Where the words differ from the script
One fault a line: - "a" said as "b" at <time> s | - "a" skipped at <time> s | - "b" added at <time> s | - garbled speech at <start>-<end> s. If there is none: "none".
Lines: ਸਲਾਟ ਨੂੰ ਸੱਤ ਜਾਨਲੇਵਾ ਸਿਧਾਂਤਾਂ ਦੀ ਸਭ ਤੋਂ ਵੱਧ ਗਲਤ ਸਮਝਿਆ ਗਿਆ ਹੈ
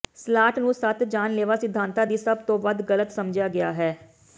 none